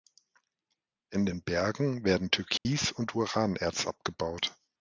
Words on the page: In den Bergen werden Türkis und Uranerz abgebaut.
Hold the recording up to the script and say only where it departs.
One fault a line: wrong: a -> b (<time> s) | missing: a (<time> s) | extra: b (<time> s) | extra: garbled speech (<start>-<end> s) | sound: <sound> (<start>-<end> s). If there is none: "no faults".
sound: dropout (2.6-2.7 s)